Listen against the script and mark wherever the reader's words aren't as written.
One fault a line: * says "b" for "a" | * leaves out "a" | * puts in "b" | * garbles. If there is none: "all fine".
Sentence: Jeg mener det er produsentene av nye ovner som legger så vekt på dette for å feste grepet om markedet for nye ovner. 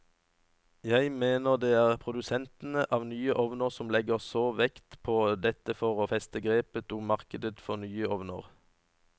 all fine